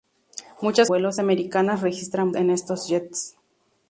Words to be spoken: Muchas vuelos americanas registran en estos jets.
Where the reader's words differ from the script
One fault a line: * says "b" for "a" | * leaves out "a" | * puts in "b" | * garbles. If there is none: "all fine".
all fine